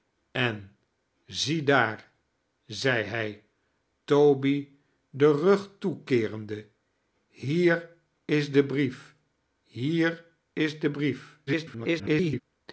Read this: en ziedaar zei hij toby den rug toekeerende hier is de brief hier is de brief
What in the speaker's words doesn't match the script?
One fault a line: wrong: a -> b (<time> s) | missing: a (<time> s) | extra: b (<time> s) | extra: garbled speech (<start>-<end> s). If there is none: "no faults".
extra: garbled speech (11.5-12.4 s)